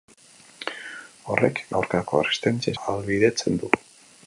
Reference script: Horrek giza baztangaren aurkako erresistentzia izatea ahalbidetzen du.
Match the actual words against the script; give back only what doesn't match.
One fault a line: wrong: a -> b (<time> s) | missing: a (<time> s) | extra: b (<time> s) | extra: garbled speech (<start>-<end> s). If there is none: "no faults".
missing: giza baztangaren (1.6 s)
missing: izatea (2.8 s)